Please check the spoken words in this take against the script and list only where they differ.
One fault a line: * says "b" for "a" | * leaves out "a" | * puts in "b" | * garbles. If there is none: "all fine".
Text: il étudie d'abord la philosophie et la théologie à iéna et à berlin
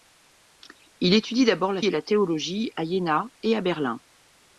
* leaves out "philosophie"